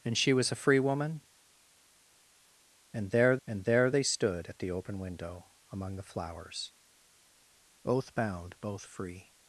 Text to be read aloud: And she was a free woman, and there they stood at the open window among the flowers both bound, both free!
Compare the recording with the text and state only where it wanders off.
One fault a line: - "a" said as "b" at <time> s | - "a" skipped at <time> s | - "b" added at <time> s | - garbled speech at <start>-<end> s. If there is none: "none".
- "and there" added at 3.5 s